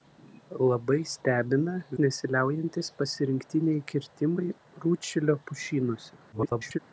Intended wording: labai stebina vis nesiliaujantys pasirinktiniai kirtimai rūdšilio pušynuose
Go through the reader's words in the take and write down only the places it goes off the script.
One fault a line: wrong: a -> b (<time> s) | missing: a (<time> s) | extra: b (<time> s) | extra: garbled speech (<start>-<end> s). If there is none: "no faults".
missing: vis (1.8 s)
extra: garbled speech (6.3-6.8 s)